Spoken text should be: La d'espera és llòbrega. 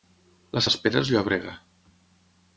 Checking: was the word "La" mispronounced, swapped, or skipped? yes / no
no